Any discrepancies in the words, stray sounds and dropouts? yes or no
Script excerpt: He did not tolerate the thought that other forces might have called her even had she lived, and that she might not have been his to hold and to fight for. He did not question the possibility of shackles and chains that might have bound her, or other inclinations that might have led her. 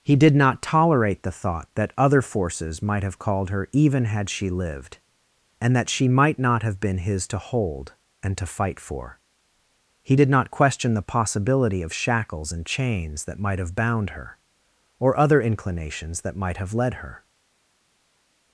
no